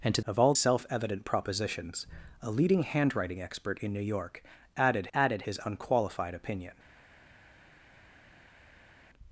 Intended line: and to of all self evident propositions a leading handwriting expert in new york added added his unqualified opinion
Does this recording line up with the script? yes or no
yes